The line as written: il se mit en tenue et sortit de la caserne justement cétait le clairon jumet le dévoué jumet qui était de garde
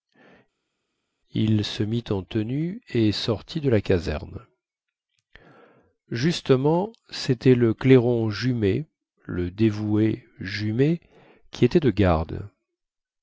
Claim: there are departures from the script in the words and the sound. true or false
false